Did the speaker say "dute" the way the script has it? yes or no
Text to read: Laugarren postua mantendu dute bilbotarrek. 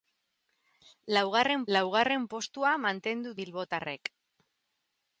no